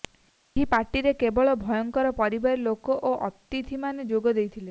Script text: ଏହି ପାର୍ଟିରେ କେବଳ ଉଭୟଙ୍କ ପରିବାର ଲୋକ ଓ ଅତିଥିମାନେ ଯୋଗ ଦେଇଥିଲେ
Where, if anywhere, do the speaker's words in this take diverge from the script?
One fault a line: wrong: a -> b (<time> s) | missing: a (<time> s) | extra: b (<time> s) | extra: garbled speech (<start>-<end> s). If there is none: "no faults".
no faults